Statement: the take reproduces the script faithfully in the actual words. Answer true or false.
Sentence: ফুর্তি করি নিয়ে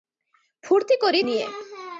true